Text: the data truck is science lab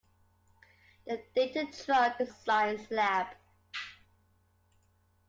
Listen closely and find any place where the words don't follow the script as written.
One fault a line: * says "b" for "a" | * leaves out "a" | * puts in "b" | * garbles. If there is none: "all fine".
all fine